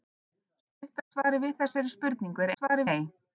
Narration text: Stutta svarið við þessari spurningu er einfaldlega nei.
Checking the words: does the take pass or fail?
fail